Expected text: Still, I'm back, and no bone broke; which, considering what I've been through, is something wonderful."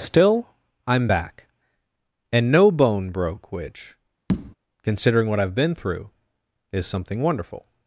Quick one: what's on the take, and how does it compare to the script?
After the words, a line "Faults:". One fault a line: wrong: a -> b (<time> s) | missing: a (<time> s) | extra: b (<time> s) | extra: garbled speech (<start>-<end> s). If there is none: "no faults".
Still, I'm back, and no bone broke; which, considering what I've been through, is something wonderful."
Faults:
no faults